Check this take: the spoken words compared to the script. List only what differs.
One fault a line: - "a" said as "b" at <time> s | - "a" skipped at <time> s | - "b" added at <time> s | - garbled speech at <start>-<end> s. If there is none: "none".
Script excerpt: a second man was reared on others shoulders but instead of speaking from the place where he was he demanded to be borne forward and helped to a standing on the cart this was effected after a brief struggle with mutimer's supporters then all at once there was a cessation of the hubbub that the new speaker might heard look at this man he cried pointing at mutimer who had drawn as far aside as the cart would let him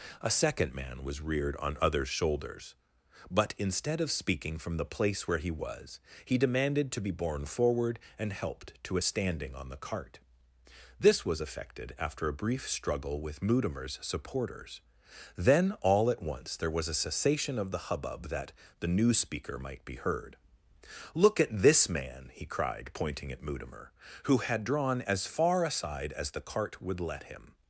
- "be" added at 19.8 s